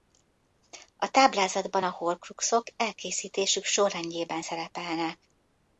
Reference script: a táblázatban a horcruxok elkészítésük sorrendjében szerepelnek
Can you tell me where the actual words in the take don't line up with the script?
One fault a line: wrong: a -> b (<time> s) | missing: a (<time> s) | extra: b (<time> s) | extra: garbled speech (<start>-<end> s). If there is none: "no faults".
no faults